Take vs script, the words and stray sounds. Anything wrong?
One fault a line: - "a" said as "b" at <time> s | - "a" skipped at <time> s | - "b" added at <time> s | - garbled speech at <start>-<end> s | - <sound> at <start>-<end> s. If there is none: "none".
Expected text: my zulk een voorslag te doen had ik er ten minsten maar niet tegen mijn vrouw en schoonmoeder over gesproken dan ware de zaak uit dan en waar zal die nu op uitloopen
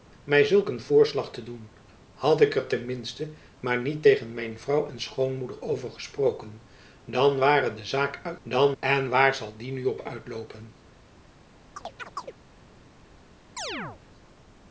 - chirp at 11.8-12.3 s
- chirp at 13.6-14.0 s